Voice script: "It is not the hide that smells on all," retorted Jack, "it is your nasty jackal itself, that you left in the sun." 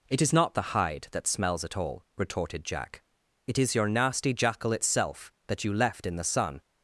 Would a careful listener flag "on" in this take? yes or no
yes